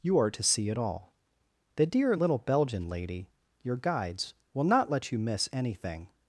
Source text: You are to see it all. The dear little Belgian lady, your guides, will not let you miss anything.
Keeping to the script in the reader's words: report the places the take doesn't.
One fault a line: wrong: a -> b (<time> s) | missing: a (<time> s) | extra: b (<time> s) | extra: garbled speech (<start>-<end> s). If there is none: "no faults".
no faults